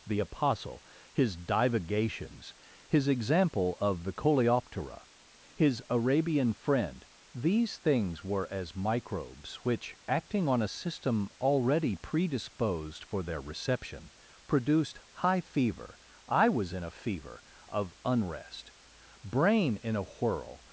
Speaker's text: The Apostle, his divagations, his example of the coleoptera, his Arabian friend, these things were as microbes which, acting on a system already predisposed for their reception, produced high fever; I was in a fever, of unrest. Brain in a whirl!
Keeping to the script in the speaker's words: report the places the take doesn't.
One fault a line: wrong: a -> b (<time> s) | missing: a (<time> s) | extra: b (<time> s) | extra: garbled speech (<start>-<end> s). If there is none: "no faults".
no faults